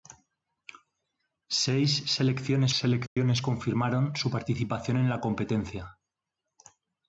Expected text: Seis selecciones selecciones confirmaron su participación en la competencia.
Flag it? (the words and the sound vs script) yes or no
yes